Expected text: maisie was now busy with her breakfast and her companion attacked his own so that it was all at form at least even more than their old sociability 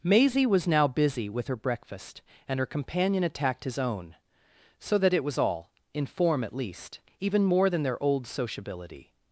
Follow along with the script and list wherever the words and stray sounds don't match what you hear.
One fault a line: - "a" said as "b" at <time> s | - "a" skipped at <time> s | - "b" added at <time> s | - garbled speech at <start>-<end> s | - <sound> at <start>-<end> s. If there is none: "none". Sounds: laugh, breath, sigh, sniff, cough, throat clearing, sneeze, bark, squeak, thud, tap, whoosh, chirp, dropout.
- "at" said as "in" at 5.9 s